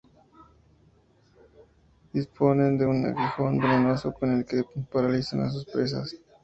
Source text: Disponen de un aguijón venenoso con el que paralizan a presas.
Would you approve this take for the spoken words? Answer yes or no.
no